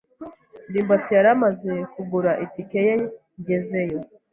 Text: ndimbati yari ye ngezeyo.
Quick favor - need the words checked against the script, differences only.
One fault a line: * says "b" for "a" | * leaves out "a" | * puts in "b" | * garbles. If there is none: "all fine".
* puts in "amaze kugura itike"